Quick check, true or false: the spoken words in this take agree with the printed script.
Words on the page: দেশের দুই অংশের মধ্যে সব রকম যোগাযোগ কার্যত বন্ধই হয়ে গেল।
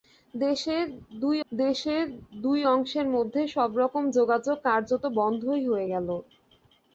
false